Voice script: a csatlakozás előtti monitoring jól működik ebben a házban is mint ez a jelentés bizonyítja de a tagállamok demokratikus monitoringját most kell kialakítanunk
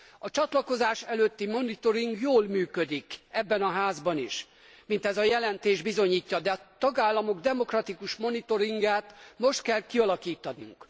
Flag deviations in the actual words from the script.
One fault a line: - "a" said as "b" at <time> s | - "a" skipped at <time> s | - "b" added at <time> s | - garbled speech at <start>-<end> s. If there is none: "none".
none